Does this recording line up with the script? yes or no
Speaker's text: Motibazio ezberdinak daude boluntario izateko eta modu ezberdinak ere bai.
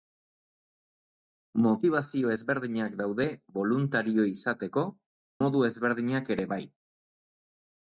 no